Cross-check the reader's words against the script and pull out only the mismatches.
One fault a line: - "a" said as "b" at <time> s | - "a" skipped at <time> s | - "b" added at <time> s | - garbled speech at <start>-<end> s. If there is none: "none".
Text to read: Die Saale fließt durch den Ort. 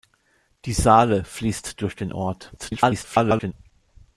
- garbled speech at 2.6-3.5 s